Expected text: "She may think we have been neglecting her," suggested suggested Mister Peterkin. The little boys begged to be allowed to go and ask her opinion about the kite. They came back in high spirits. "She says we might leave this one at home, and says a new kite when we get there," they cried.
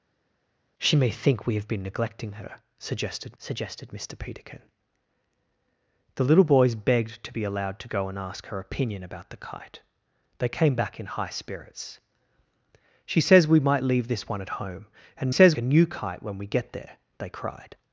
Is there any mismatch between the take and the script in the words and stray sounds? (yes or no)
no